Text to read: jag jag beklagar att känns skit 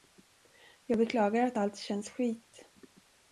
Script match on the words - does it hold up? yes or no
no